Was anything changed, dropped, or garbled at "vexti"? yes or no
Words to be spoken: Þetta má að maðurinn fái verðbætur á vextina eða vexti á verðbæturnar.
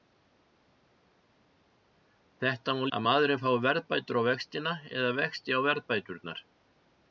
no